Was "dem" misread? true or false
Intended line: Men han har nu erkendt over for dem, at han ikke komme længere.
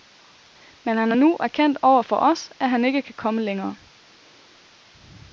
true